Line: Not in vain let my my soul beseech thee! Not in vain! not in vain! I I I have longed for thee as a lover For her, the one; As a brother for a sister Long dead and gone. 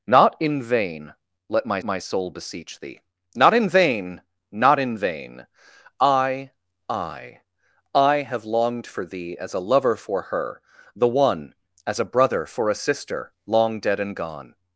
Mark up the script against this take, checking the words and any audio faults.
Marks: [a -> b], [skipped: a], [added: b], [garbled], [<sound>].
Not in vain let my my soul beseech thee! Not in vain! not in vain! I I I have longed for thee as a lover For her, the one; As a brother for a sister Long dead and gone.